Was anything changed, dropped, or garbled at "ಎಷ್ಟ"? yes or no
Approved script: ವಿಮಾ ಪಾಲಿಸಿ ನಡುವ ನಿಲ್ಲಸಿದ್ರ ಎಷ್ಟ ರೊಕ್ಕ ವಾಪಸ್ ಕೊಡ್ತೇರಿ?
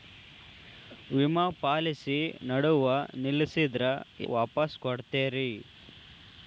yes